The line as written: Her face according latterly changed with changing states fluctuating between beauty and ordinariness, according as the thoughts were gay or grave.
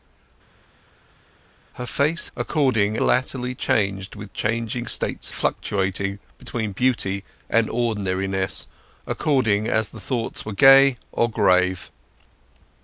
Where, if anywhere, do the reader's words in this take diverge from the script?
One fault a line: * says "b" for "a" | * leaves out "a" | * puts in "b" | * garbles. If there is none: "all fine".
all fine